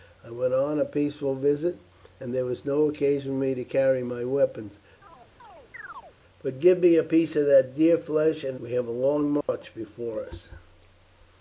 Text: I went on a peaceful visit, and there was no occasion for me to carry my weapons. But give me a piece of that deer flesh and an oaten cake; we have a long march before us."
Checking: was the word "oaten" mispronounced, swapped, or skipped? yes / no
yes